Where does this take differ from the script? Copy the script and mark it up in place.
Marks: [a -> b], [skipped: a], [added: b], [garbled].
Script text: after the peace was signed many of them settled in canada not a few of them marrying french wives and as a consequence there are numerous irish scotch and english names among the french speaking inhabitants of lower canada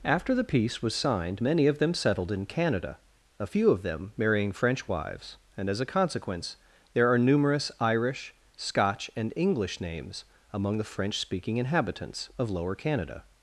after the peace was signed many of them settled in canada [skipped: not] a few of them marrying french wives and as a consequence there are numerous irish scotch and english names among the french speaking inhabitants of lower canada